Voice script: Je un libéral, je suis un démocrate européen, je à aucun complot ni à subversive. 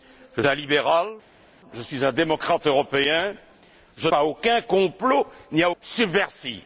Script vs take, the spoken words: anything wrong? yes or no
no